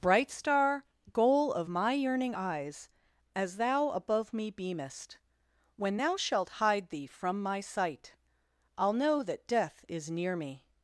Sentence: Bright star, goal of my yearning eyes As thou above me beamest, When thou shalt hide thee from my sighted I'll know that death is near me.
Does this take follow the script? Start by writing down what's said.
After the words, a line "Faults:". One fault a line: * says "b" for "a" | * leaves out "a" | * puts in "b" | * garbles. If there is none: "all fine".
Bright star, goal of my yearning eyes As thou above me beamest, When thou shalt hide thee from my sight I'll know that death is near me.
Faults:
* says "sight" for "sighted"